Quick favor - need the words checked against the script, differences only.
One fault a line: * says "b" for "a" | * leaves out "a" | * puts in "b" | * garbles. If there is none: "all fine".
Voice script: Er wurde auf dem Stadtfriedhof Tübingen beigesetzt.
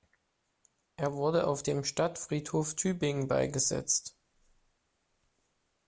all fine